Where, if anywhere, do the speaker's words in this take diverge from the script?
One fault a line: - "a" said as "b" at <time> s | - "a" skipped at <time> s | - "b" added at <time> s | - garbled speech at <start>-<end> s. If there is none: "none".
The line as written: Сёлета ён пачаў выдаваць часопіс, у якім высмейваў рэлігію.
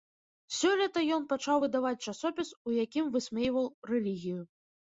none